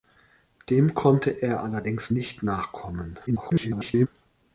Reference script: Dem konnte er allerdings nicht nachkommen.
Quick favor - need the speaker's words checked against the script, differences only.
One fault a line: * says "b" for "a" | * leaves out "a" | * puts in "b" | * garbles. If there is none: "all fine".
* garbles